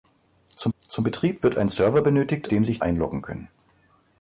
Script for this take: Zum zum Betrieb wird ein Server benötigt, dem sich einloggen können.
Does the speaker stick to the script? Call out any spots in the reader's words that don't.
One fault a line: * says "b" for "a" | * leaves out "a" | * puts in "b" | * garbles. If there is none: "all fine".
all fine